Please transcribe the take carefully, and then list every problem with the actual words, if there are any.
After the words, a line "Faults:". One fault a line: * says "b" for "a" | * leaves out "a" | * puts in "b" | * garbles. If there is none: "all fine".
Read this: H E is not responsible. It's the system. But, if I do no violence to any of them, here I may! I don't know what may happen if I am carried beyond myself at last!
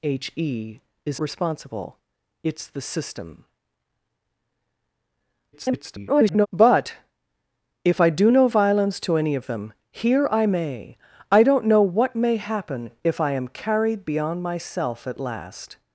H E is responsible. It's the system. [garbled] But, if I do no violence to any of them, here I may! I don't know what may happen if I am carried beyond myself at last!
Faults:
* leaves out "not"
* garbles